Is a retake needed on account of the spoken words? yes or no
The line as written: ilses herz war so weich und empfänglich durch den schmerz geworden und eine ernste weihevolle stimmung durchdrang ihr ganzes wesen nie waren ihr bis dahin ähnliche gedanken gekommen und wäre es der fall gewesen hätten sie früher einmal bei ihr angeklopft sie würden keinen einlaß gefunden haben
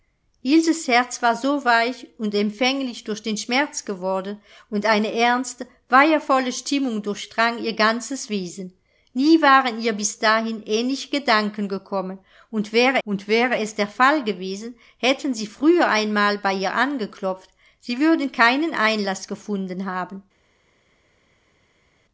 yes